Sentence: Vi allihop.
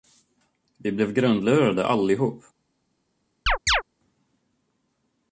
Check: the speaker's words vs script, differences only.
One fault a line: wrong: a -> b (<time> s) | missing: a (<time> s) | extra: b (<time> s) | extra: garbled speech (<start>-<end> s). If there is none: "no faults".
extra: blev grundlurade (0.9 s)